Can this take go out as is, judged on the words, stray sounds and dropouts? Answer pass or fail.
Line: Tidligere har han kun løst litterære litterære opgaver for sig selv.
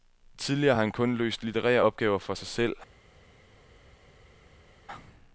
fail